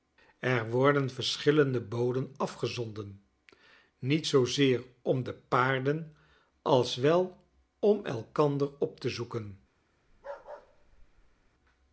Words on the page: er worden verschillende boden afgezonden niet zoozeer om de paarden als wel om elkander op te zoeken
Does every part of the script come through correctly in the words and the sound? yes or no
no